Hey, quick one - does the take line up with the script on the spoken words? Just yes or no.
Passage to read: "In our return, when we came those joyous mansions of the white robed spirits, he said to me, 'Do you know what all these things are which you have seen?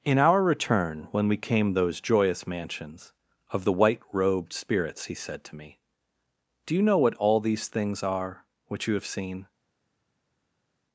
yes